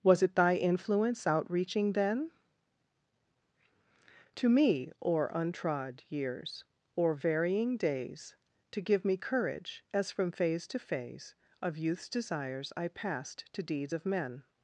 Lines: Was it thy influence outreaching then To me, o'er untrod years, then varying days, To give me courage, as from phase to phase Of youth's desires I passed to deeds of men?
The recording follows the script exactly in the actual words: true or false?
false